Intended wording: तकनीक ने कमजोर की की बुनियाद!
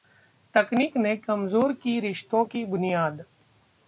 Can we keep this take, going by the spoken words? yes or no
no